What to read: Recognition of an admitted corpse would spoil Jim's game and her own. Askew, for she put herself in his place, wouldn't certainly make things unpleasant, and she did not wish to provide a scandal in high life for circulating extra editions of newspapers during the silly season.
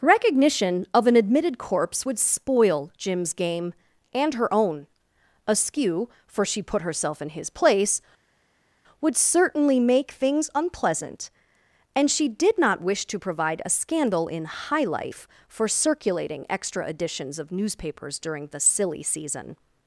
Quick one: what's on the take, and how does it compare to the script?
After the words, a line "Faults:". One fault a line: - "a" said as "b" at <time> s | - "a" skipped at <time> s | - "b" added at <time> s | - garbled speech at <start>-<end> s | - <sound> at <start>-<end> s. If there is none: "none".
Recognition of an admitted corpse would spoil Jim's game and her own. Askew, for she put herself in his place, would certainly make things unpleasant, and she did not wish to provide a scandal in high life for circulating extra editions of newspapers during the silly season.
Faults:
- "wouldn't" said as "would" at 9.0 s